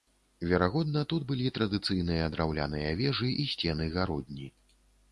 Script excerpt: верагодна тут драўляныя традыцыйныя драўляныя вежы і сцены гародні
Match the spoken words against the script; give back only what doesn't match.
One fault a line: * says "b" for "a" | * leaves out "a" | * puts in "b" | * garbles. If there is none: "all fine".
* says "былі" for "драўляныя"